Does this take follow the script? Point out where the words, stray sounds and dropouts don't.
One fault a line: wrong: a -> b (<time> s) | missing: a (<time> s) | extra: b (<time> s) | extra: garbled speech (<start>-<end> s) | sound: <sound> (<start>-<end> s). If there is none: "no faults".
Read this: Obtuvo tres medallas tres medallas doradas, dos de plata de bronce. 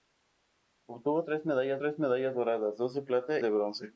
no faults